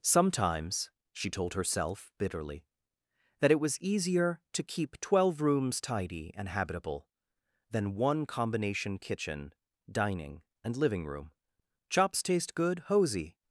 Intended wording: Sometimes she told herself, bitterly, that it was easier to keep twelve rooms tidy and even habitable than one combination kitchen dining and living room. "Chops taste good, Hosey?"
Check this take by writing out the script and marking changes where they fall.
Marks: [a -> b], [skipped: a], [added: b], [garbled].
Sometimes she told herself, bitterly, that it was easier to keep twelve rooms tidy and [skipped: even] habitable than one combination kitchen dining and living room. "Chops taste good, Hosey?"